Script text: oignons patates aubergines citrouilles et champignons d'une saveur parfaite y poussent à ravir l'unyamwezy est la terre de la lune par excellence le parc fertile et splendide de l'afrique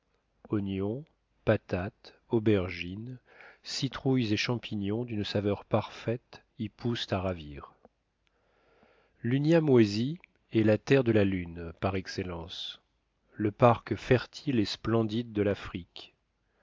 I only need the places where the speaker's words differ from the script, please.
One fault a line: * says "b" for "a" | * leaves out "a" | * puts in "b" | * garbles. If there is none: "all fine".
all fine